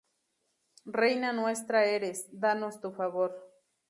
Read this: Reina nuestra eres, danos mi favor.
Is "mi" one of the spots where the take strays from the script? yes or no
yes